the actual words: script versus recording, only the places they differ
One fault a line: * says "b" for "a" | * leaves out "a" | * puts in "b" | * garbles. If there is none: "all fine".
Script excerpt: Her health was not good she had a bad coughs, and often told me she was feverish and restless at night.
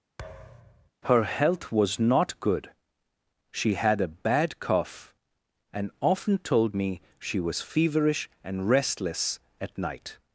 * says "cough" for "coughs"